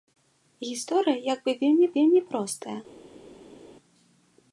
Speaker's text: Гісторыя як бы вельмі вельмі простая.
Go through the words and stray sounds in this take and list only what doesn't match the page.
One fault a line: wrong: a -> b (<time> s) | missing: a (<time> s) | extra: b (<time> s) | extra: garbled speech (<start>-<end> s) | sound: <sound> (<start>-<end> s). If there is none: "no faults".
no faults